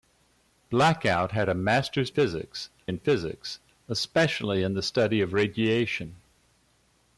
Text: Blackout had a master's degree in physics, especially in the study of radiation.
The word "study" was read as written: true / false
true